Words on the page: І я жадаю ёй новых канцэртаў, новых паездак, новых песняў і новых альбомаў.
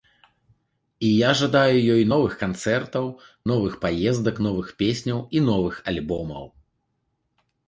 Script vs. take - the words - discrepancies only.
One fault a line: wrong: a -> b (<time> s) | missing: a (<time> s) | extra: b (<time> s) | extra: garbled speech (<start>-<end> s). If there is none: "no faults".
no faults